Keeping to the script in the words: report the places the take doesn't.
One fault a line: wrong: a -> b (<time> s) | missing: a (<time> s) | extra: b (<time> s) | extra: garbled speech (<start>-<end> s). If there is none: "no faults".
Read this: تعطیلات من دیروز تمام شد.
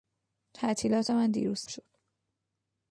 missing: تمام (1.6 s)